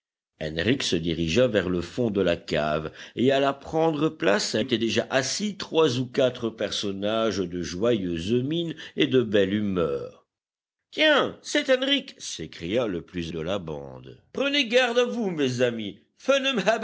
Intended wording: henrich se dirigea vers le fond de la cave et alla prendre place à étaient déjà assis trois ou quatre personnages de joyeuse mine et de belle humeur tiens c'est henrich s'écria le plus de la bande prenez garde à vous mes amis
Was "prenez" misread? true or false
false